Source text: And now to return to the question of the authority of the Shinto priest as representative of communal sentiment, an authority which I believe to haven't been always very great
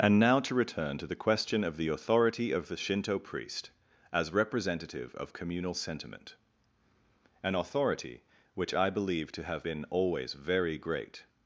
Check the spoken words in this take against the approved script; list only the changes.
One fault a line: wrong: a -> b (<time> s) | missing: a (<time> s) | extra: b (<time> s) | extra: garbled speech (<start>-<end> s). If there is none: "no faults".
wrong: haven't -> have (9.4 s)